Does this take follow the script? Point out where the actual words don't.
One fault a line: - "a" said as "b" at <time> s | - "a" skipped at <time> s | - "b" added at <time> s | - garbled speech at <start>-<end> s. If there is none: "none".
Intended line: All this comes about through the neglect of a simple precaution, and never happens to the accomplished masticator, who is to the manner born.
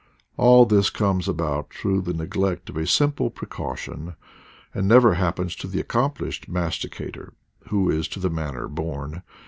none